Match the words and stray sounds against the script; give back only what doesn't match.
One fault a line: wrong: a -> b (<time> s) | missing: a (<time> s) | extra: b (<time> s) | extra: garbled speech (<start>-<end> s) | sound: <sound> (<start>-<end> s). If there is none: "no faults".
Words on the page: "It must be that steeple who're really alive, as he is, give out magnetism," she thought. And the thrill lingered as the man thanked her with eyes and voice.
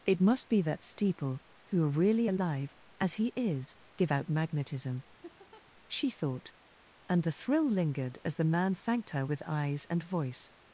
sound: laugh (5.2-5.7 s)